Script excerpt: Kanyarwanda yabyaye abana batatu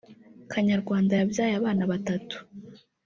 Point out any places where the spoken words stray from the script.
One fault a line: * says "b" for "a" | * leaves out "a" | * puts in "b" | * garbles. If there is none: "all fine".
all fine